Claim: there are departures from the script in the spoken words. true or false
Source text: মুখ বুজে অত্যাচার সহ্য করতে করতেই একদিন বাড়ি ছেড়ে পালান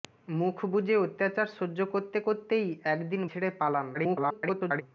true